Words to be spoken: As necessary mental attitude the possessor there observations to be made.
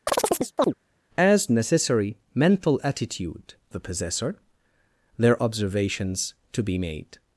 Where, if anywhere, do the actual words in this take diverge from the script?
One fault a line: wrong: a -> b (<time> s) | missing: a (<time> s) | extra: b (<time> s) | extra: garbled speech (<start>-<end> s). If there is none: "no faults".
no faults